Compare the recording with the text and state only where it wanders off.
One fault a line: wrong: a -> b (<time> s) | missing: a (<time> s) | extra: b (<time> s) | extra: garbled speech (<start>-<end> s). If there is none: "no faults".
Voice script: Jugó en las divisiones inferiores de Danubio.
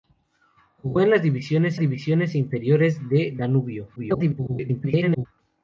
extra: divisiones (1.8 s)
extra: garbled speech (4.0-5.3 s)